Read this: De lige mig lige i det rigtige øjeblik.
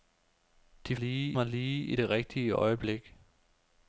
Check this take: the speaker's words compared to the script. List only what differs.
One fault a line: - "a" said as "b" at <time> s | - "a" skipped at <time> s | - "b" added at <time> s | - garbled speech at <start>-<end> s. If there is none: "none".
none